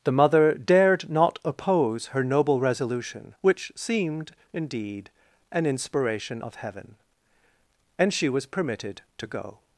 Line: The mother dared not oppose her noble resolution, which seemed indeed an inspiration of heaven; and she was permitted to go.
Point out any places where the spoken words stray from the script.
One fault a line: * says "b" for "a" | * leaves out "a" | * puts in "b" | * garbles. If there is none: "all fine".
all fine